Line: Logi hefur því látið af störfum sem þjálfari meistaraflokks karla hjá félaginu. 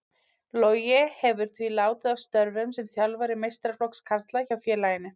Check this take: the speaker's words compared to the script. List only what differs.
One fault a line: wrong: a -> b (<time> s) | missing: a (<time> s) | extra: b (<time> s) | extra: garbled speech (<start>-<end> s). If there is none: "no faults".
no faults